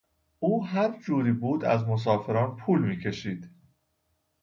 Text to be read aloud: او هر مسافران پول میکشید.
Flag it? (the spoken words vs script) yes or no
yes